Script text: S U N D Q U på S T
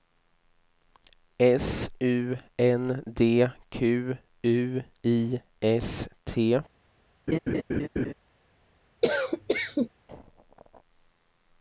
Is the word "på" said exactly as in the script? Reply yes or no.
no